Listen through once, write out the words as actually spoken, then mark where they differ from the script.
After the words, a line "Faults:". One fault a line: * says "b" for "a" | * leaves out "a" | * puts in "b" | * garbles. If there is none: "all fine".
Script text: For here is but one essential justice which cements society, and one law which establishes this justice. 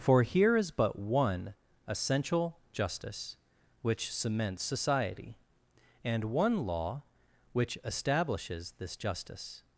For here is but one essential justice which cements society, and one law which establishes this justice.
Faults:
all fine